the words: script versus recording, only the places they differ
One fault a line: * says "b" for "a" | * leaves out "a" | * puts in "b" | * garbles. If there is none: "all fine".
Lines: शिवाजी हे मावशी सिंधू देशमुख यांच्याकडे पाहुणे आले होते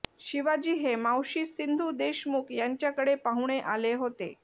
all fine